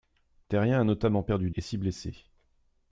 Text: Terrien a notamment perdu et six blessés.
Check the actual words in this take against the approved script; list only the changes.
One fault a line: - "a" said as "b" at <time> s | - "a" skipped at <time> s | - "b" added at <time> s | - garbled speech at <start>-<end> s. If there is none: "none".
none